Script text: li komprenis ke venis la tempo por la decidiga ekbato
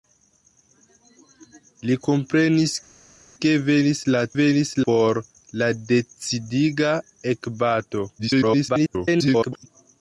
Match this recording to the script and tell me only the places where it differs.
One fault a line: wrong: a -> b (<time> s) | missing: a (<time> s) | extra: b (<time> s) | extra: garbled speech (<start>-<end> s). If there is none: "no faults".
wrong: tempo -> venis (4.4 s)
extra: garbled speech (8.2-9.7 s)